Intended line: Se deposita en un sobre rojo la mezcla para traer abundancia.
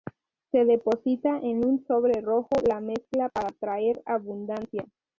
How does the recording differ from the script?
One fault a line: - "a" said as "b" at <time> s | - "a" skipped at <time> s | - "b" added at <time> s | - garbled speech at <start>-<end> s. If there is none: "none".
none